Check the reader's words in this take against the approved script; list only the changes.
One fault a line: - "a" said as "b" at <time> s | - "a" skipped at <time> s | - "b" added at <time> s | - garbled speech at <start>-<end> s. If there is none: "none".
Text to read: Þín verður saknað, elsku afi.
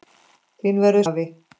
- "saknað elsku" skipped at 1.1 s